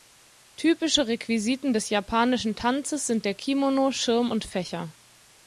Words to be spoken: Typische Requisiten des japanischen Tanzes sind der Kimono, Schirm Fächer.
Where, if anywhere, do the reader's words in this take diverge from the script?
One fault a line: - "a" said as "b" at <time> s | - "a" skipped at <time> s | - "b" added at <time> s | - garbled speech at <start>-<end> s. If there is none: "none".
- "und" added at 4.3 s